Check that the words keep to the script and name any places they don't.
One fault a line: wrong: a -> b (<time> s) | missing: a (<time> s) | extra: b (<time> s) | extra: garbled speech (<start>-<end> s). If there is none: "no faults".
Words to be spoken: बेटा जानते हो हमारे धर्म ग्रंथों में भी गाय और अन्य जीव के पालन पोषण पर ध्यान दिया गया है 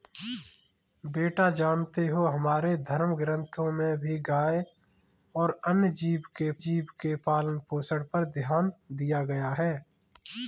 extra: जीव के (6.7 s)